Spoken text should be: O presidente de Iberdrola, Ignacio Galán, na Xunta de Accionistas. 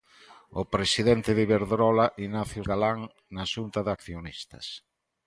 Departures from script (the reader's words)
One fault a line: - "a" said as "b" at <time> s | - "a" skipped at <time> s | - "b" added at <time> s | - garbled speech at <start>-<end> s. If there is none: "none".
none